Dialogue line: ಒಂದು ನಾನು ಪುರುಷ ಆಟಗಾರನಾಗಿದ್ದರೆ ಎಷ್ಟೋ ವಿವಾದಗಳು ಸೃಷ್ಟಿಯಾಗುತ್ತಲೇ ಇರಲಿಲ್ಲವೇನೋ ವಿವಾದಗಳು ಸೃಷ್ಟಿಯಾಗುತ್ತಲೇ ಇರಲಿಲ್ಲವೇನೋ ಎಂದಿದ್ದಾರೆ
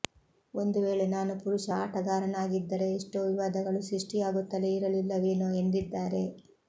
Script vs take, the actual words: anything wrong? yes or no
yes